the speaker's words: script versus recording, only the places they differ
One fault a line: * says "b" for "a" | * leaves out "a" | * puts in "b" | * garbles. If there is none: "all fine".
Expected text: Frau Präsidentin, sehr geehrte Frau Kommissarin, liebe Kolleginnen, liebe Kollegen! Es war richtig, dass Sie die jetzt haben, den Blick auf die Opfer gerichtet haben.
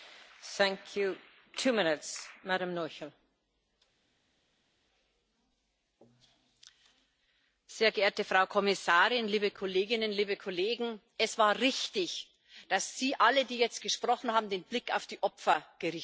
* puts in "alle"
* puts in "gesprochen"